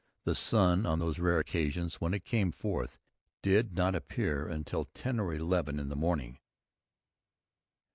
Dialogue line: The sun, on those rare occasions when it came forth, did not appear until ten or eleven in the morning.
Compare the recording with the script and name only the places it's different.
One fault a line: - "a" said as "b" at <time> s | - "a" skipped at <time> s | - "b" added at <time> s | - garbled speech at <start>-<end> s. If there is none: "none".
none